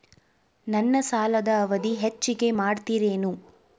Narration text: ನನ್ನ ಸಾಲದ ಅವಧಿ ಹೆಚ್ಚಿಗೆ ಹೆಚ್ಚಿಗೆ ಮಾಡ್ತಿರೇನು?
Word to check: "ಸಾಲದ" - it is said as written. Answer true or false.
true